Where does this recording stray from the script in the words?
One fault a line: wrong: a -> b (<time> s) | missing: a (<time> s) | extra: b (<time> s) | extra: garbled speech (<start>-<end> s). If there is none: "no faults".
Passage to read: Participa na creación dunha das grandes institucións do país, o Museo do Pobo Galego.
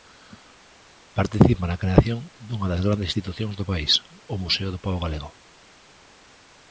no faults